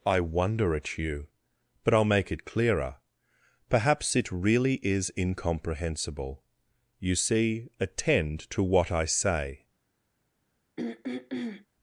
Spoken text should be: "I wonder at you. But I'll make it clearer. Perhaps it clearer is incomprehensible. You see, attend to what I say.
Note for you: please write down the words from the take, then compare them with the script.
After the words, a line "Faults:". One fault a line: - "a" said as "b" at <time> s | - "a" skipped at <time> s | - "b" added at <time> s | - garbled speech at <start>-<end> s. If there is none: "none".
"I wonder at you. But I'll make it clearer. Perhaps it really is incomprehensible. You see, attend to what I say.
Faults:
- "clearer" said as "really" at 4.3 s